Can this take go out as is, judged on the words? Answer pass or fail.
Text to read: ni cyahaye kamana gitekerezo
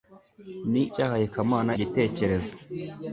pass